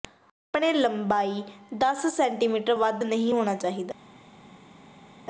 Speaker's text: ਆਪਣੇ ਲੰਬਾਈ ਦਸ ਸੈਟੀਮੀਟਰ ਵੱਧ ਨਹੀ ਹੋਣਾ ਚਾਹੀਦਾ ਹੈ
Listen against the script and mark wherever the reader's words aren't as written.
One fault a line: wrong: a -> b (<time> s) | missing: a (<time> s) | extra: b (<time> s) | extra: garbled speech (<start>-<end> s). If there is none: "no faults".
no faults